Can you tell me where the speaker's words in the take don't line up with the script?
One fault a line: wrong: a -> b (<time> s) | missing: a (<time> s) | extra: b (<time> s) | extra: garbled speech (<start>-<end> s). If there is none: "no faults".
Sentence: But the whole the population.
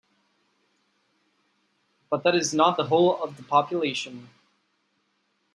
extra: that is not (2.2 s)
extra: of (3.2 s)